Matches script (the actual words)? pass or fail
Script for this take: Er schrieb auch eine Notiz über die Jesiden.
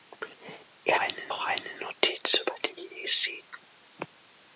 fail